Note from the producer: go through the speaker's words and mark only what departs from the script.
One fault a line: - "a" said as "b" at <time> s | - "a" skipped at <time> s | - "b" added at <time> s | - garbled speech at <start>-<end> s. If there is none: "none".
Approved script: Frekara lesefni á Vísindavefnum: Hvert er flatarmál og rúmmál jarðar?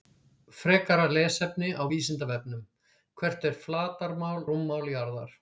- "og" skipped at 4.4 s